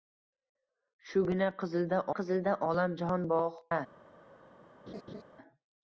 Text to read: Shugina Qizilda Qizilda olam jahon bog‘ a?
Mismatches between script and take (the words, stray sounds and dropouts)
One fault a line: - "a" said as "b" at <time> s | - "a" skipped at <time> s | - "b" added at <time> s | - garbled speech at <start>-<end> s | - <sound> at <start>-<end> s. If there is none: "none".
- laugh at 4.9-5.2 s